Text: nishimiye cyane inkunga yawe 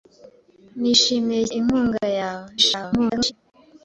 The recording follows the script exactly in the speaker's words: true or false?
false